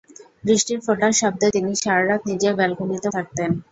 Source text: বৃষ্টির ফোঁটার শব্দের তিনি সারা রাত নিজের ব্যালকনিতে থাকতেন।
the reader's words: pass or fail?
pass